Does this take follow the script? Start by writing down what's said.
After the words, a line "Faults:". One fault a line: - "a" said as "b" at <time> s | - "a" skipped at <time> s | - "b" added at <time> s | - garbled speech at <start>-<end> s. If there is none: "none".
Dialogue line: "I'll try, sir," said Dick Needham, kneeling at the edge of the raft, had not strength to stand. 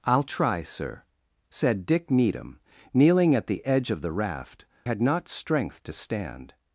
"I'll try, sir," said Dick Needham, kneeling at the edge of the raft, had not strength to stand.
Faults:
none